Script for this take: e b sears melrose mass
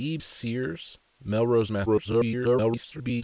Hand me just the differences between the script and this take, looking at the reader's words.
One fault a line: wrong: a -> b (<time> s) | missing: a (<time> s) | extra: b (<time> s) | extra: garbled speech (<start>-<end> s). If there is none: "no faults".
missing: b (0.2 s)
extra: garbled speech (1.9-3.2 s)